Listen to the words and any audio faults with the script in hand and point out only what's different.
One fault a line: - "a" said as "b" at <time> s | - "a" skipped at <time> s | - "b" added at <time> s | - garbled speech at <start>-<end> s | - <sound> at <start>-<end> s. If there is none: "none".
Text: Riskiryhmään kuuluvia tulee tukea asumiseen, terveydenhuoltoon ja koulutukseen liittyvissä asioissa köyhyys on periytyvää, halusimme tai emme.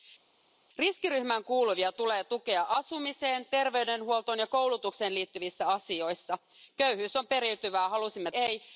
- "tai" skipped at 8.3 s